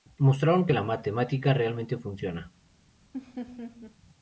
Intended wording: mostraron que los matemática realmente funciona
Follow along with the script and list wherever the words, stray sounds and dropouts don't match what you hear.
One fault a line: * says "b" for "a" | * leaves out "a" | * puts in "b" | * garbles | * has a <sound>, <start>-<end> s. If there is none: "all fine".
* says "la" for "los"
* has a laugh, 3.1-4.0 s